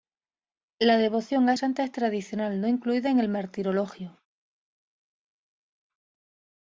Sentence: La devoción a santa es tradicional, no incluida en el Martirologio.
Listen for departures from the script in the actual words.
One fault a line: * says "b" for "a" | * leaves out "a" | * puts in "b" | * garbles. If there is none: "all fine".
all fine